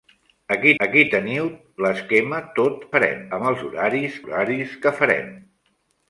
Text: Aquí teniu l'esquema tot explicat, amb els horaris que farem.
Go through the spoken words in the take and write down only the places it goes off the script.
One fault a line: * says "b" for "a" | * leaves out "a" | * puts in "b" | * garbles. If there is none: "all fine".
* puts in "aquí"
* says "farem" for "explicat"
* puts in "horaris"